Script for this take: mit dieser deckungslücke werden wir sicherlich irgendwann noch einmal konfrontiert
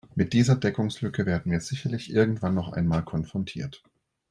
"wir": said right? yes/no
yes